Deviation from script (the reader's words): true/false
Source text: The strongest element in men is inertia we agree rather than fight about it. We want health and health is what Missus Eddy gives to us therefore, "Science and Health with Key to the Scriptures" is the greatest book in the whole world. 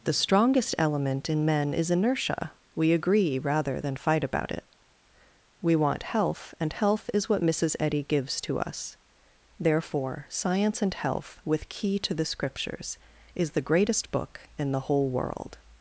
false